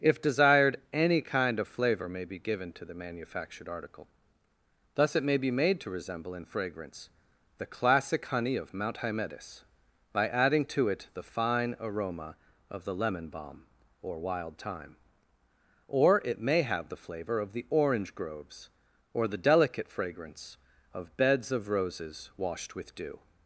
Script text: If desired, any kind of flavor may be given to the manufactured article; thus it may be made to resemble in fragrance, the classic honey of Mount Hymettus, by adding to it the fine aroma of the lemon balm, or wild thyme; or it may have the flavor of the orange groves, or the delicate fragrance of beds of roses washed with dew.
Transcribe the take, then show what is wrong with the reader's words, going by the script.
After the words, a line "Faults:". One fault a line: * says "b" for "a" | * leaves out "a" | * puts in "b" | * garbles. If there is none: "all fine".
If desired, any kind of flavor may be given to the manufactured article; thus it may be made to resemble in fragrance, the classic honey of Mount Hymettus, by adding to it the fine aroma of the lemon balm, or wild thyme; or it may have the flavor of the orange groves, or the delicate fragrance of beds of roses washed with dew.
Faults:
all fine